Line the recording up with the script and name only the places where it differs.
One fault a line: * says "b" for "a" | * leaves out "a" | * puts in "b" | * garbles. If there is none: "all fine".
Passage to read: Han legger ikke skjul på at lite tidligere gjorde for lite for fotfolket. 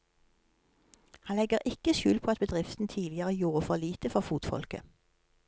* says "bedriften" for "lite"